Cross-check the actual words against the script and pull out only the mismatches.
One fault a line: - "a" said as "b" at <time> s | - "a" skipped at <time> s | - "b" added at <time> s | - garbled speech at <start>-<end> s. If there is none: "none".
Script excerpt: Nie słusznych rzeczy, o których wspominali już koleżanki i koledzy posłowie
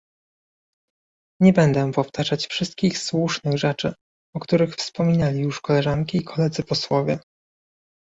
- "będę powtarzać wszystkich" added at 1.5 s